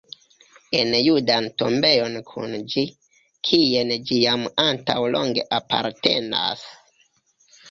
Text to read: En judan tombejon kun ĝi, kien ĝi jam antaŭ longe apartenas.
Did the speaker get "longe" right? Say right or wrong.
right